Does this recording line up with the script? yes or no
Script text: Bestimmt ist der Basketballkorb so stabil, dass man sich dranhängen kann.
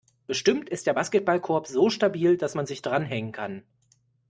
yes